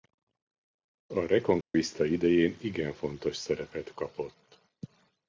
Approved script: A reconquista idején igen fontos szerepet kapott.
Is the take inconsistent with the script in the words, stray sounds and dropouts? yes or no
yes